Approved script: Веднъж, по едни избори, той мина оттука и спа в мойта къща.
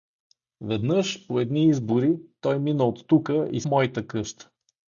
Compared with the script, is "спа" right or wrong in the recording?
wrong